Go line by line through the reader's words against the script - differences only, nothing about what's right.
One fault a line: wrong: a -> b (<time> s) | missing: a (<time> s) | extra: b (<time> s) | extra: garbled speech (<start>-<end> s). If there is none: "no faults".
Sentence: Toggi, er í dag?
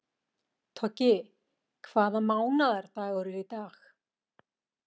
extra: hvaða mánaðardagur (1.9 s)